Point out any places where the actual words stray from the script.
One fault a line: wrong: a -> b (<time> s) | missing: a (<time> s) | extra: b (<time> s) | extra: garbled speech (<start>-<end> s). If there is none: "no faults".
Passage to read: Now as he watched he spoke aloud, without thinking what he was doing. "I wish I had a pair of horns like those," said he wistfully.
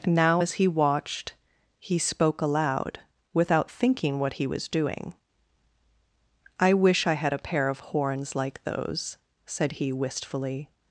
no faults